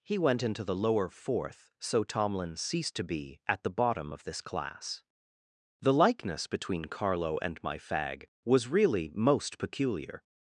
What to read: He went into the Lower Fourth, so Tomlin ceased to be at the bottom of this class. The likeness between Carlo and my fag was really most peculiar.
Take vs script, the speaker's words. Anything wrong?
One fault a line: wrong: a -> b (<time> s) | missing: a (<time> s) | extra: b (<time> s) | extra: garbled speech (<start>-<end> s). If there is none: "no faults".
no faults